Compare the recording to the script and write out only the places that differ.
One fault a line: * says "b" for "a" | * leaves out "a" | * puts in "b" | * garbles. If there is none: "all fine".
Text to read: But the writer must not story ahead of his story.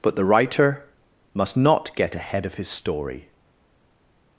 * says "get" for "story"